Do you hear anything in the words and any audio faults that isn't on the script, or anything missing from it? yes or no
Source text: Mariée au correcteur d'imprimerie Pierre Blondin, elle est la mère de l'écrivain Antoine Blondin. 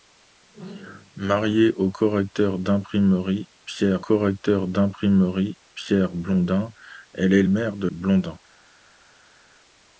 yes